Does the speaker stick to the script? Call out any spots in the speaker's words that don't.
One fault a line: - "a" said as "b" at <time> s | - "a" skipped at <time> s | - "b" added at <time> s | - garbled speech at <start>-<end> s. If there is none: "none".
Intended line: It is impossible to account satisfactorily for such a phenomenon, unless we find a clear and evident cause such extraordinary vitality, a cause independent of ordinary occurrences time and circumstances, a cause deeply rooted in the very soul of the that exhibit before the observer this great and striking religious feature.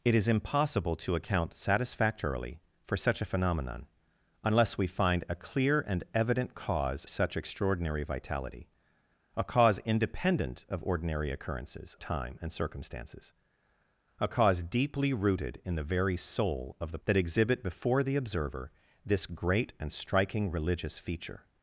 none